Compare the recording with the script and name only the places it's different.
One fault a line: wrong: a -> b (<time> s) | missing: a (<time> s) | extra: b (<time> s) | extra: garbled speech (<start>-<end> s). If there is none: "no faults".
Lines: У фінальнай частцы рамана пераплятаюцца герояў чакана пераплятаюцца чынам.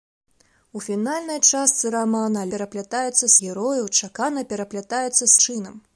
no faults